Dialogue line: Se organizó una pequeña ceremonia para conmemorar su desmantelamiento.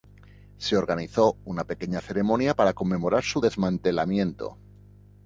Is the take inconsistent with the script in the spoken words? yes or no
no